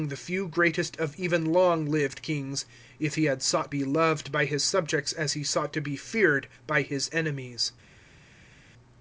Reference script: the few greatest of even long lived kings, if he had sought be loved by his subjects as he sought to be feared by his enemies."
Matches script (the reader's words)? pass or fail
pass